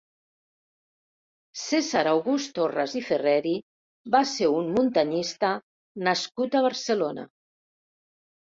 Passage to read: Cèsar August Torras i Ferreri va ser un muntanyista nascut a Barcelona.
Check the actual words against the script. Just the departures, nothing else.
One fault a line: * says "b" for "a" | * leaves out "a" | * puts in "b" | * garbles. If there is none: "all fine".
all fine